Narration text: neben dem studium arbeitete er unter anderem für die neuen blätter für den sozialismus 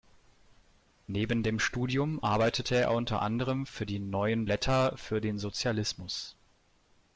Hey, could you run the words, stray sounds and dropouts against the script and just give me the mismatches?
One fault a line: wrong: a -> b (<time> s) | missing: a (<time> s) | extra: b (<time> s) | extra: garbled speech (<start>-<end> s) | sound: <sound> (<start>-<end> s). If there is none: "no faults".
no faults